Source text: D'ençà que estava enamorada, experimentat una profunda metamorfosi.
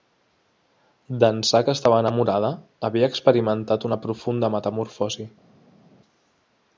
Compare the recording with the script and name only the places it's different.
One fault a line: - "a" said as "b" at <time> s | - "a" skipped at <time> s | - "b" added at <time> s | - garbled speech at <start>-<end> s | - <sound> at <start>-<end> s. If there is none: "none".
- "havia" added at 2.9 s